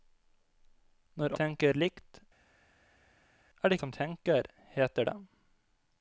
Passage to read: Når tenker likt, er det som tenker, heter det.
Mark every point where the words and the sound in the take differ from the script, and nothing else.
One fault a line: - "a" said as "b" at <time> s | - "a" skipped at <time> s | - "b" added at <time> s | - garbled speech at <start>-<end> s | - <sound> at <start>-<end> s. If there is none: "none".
none